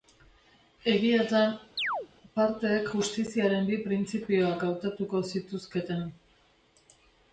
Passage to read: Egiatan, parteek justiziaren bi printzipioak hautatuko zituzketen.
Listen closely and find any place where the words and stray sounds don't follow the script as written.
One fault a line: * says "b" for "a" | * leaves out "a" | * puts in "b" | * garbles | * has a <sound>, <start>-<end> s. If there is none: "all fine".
* has a chirp, 1.8-2.1 s